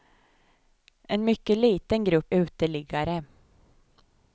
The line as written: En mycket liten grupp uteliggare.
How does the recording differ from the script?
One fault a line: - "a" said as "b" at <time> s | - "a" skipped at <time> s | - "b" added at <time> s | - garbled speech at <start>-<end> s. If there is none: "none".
none